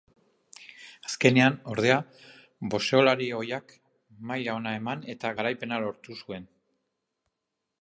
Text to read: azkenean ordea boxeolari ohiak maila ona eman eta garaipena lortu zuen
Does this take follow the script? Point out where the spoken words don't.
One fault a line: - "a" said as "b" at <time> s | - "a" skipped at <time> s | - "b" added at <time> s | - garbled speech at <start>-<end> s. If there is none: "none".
none